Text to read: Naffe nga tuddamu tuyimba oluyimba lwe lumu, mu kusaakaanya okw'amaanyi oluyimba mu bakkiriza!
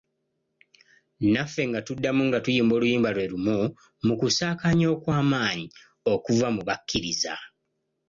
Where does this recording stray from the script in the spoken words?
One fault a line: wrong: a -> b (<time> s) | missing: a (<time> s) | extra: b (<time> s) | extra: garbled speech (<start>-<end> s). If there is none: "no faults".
extra: nga (2.3 s)
wrong: oluyimba -> okuva (6.1 s)